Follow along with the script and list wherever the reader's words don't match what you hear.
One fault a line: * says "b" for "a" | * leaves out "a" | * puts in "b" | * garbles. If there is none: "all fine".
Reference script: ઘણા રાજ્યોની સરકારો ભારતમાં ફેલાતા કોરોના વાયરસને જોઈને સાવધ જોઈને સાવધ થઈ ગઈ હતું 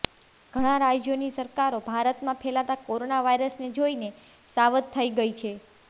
* leaves out "જોઈને સાવધ"
* says "છે" for "હતું"